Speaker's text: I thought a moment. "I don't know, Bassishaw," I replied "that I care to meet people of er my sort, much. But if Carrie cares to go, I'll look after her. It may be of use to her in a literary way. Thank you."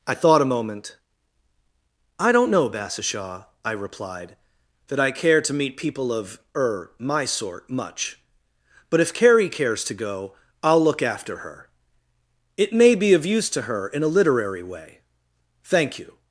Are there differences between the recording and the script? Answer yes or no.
no